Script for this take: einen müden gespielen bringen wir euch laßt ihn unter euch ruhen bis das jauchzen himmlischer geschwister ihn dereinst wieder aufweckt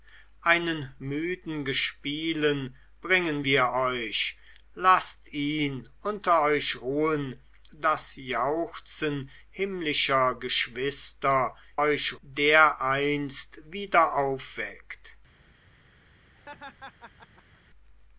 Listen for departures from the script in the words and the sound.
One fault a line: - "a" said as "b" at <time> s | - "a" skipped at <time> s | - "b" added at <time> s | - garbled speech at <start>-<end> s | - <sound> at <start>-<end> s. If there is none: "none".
- "bis" skipped at 7.4 s
- "ihn" said as "euch" at 11.8 s
- laugh at 16.3-17.6 s